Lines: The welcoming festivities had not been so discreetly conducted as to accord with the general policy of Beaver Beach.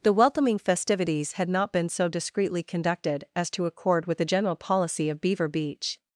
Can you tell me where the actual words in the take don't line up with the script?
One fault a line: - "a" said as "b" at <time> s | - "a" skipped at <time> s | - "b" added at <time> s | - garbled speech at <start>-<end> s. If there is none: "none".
none